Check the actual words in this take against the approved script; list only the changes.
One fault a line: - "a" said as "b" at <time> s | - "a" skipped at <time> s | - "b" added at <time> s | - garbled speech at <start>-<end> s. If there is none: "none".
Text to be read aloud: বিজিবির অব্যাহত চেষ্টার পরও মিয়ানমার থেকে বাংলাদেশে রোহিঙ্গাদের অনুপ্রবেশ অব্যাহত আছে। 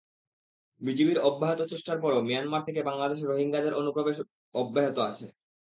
none